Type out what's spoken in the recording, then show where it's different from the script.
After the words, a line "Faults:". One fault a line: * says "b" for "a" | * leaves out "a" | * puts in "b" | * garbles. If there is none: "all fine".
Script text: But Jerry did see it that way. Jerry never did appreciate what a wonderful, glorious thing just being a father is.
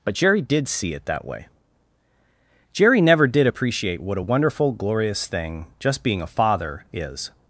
But Jerry did see it that way. Jerry never did appreciate what a wonderful, glorious thing just being a father is.
Faults:
all fine